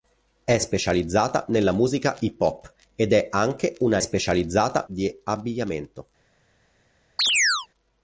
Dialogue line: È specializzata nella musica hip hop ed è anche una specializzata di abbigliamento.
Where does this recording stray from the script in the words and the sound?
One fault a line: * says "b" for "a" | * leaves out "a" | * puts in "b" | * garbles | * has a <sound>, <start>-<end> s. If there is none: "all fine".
* has a chirp, 7.2-7.7 s